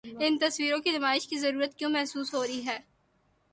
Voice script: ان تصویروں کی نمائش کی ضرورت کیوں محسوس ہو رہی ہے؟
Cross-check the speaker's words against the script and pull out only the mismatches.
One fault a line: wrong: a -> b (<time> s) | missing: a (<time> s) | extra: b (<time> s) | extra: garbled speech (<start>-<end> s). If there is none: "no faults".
no faults